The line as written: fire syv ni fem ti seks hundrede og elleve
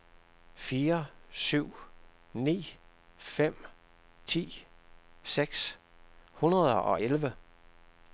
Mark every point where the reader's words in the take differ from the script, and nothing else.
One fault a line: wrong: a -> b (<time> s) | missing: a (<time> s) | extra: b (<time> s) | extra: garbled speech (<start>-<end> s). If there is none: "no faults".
no faults